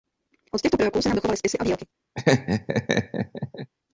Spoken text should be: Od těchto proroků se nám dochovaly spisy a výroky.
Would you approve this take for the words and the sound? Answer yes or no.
no